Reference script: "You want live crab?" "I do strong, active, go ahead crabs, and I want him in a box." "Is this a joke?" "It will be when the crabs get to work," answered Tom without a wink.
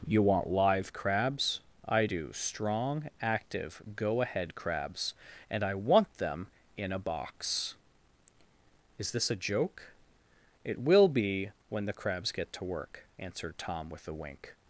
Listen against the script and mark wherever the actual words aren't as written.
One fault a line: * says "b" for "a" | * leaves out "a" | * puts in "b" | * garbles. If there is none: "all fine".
* says "crabs" for "crab"
* says "them" for "him"
* says "with" for "without"